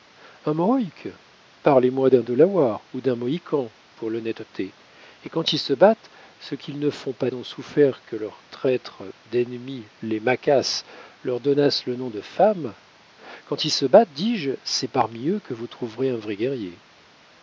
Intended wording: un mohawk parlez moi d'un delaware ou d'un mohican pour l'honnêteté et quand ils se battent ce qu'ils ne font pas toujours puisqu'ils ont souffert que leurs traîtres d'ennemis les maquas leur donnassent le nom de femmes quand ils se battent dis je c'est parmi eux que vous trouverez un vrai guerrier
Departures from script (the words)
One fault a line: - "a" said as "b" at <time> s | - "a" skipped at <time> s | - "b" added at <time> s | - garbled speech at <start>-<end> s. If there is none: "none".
- "toujours puisqu'ils" skipped at 7.3 s